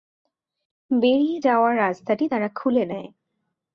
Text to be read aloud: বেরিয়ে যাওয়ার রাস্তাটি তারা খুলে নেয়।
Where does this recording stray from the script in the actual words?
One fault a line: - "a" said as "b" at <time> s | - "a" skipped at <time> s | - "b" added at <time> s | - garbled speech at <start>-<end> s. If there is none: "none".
none